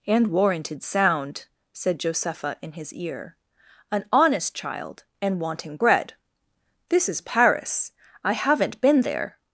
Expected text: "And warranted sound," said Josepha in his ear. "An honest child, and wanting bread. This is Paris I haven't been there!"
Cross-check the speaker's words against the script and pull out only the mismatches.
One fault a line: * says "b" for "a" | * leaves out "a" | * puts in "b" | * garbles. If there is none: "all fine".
all fine